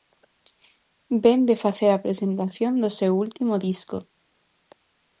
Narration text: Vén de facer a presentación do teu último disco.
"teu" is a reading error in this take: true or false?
true